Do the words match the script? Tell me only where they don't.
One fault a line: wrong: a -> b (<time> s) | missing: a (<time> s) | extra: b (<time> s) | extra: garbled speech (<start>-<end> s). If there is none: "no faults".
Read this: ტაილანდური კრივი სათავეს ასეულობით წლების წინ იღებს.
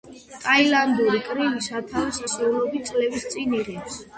no faults